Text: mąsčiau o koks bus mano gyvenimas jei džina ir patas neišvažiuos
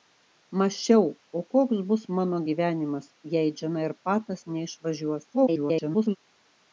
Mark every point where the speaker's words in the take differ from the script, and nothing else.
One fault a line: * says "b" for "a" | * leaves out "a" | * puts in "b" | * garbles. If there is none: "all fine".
* garbles